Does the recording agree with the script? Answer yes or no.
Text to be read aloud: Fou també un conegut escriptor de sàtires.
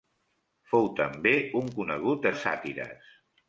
no